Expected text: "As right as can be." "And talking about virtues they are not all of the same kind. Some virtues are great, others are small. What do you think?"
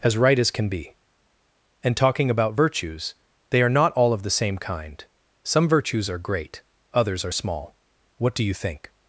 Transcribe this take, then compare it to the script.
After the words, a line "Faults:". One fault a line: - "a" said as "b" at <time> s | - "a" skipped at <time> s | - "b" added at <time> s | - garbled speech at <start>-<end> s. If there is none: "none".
"As right as can be." "And talking about virtues they are not all of the same kind. Some virtues are great, others are small. What do you think?"
Faults:
none